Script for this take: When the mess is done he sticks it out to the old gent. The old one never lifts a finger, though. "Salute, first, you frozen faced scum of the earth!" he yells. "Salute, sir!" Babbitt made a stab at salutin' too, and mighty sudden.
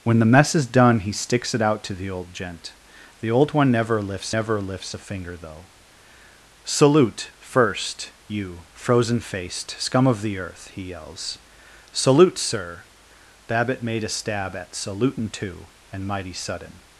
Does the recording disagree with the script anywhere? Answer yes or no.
yes